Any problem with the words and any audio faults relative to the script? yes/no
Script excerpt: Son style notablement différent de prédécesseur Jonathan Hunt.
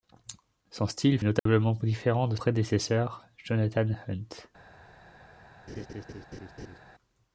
yes